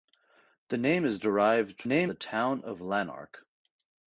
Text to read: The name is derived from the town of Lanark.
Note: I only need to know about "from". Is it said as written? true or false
false